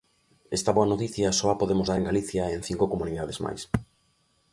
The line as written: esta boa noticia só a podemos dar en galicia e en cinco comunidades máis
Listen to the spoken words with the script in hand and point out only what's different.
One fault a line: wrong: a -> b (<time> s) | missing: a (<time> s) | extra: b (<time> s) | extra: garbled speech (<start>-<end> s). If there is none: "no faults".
no faults